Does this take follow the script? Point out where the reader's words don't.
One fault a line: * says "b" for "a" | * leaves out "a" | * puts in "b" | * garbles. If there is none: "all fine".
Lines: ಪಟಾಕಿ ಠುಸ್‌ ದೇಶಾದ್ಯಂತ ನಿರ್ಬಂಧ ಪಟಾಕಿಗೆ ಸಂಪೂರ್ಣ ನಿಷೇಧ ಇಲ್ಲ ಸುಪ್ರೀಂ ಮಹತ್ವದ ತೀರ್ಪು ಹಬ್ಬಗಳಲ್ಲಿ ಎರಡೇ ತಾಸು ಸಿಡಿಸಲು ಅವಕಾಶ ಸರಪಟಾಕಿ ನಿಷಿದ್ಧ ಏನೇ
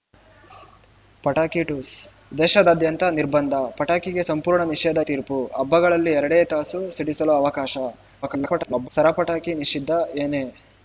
* leaves out "ಇಲ್ಲ ಸುಪ್ರೀಂ ಮಹತ್ವದ"
* garbles